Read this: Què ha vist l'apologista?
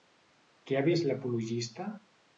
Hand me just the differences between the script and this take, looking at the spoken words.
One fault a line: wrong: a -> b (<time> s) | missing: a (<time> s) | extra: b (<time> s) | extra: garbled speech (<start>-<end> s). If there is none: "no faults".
no faults